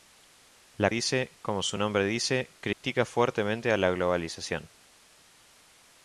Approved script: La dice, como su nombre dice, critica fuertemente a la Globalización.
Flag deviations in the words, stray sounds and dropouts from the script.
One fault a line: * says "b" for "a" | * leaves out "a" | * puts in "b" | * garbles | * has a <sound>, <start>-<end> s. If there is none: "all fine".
* has a dropout, 2.7-2.8 s